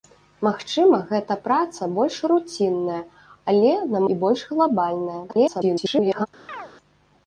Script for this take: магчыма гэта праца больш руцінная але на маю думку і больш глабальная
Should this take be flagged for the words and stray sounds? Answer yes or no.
yes